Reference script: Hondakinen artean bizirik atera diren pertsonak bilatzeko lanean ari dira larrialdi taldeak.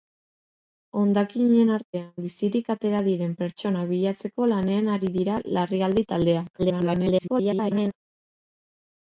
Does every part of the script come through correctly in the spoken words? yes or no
no